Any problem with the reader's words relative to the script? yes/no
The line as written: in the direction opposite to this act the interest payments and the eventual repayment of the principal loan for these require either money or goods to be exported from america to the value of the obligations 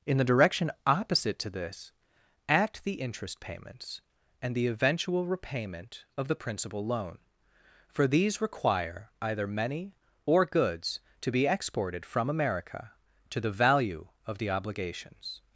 yes